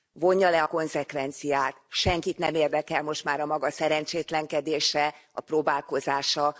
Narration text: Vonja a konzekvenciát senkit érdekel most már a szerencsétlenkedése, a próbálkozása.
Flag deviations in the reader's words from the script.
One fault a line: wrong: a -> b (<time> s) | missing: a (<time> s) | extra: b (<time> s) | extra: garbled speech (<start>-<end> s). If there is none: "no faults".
extra: le (0.5 s)
extra: nem (2.4 s)
extra: maga (3.4 s)